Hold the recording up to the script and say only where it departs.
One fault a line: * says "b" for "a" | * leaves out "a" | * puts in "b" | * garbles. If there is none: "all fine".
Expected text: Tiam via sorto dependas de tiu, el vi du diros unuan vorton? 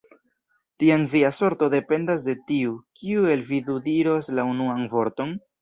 * puts in "kiu"
* puts in "la"